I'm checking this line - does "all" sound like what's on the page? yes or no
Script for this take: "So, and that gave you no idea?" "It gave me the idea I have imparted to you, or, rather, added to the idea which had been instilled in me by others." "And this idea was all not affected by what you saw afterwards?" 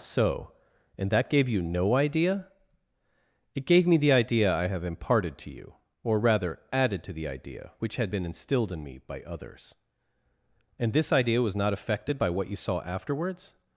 no